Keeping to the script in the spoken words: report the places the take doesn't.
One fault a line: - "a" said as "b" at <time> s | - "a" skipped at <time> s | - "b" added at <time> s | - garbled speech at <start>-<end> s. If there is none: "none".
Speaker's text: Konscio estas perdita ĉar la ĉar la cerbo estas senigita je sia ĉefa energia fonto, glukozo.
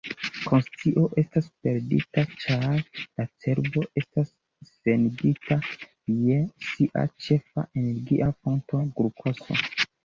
- "ĉar la" skipped at 3.3 s